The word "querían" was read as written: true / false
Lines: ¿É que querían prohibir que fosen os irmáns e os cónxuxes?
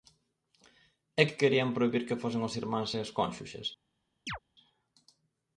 true